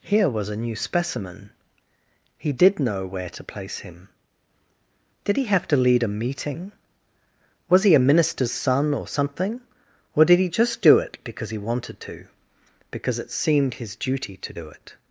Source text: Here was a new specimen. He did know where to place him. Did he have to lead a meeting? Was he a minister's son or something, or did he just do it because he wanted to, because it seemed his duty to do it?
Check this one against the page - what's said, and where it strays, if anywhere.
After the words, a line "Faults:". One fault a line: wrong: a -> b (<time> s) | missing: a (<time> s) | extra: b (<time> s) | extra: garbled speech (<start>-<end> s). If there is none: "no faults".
Here was a new specimen. He did know where to place him. Did he have to lead a meeting? Was he a minister's son or something, or did he just do it because he wanted to, because it seemed his duty to do it?
Faults:
no faults